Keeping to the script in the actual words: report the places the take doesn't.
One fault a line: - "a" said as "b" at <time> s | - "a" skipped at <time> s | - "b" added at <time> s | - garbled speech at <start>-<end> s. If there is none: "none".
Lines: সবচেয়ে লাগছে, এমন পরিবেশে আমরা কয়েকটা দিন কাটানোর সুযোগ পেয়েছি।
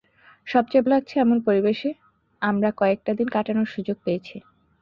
none